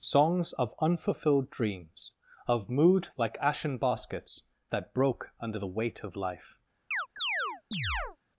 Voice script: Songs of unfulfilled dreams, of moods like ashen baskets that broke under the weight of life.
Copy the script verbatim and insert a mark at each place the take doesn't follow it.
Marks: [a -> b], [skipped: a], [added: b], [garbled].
Songs of unfulfilled dreams, of [moods -> mood] like ashen baskets that broke under the weight of life.